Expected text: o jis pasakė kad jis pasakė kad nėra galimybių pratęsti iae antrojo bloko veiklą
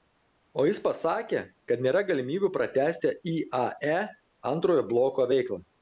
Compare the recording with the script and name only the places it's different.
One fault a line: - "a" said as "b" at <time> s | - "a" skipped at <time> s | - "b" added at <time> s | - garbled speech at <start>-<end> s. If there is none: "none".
- "jis pasakė kad" skipped at 1.9 s